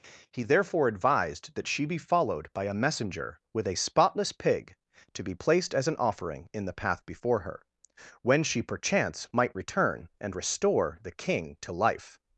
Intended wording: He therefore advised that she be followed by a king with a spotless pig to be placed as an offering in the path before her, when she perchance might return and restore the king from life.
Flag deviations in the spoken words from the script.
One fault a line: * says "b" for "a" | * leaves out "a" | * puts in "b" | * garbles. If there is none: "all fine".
* says "messenger" for "king"
* says "to" for "from"